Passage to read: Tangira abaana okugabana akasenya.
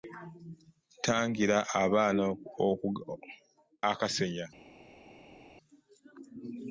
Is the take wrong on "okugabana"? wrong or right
wrong